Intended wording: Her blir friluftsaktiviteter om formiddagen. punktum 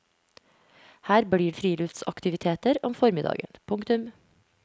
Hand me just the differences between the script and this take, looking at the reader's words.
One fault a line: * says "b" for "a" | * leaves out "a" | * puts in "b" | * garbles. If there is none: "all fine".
all fine